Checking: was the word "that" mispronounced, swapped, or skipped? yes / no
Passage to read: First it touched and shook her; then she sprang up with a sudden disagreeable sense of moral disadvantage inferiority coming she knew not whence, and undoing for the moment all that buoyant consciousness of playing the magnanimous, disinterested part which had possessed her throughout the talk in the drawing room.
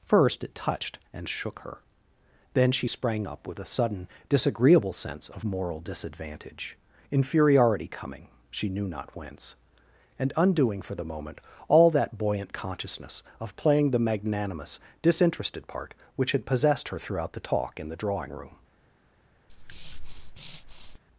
no